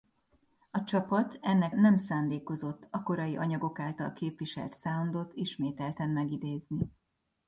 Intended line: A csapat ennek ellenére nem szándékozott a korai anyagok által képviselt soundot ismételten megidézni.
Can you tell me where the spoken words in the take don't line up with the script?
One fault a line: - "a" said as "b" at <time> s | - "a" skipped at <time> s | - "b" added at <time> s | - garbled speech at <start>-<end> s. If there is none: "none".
- "ellenére" skipped at 1.8 s